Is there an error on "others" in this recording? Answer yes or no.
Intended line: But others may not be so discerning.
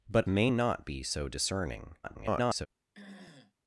yes